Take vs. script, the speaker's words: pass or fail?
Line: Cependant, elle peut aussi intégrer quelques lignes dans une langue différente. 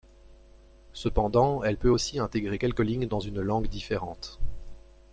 pass